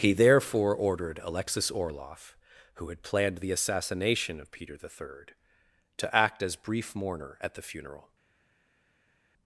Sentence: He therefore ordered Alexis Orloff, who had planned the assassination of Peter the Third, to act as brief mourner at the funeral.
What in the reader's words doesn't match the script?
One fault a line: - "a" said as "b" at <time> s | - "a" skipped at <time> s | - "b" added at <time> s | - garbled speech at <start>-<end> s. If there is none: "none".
none